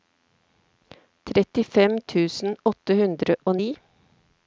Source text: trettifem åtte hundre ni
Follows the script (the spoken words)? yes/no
no